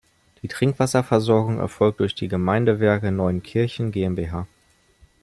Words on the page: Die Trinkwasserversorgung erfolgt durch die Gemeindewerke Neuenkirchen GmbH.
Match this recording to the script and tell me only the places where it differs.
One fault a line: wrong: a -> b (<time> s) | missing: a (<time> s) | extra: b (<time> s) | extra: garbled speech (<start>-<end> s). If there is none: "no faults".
no faults